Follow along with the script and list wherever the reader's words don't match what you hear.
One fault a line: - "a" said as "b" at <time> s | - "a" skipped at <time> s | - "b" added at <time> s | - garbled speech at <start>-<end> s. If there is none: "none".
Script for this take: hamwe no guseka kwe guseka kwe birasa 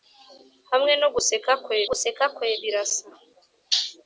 none